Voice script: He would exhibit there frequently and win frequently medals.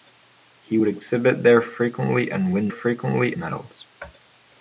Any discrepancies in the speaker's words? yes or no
no